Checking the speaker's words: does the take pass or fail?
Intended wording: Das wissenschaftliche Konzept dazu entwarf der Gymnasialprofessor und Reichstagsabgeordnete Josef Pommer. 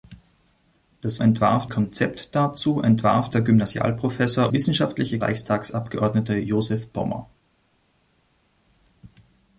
fail